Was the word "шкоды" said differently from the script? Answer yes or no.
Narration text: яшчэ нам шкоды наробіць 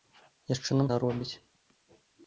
yes